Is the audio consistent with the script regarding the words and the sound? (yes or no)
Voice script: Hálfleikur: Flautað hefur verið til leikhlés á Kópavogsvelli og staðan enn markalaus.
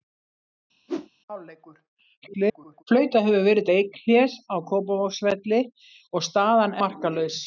no